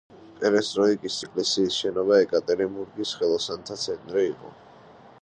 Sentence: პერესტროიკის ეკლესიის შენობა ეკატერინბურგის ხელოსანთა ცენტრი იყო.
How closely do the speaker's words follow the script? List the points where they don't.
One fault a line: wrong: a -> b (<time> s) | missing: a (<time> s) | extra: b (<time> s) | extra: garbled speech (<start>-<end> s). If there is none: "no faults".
no faults